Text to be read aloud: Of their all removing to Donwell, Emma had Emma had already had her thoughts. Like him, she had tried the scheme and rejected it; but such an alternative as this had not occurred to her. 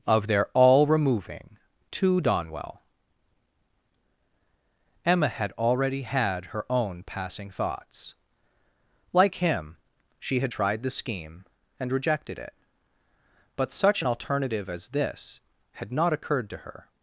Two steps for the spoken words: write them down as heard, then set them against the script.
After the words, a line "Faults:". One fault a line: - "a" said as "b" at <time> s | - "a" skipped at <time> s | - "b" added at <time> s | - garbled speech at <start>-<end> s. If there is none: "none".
Of their all removing to Donwell, Emma had already had her own passing thoughts. Like him, she had tried the scheme and rejected it; but such an alternative as this had not occurred to her.
Faults:
- "Emma" said as "already" at 5.5 s
- "already had her" said as "her own passing" at 6.5 s